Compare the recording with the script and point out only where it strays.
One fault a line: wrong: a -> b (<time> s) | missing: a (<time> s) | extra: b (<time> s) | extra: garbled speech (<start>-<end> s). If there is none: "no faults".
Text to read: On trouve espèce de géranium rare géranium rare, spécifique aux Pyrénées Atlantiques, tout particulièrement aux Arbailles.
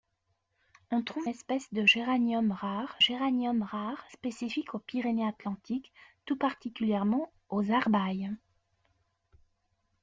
no faults